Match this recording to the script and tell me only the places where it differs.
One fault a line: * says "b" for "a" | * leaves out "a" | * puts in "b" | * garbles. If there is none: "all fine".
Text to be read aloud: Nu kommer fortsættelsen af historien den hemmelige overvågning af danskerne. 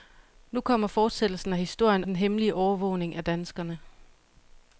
all fine